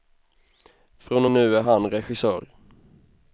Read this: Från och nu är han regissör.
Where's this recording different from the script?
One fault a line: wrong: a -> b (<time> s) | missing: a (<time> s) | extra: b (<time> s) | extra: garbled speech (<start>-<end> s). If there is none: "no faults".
no faults